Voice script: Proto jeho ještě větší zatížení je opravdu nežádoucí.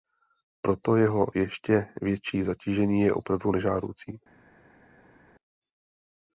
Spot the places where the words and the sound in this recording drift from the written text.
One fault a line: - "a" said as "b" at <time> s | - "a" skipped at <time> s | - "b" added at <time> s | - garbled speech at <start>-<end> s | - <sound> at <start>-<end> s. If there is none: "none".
none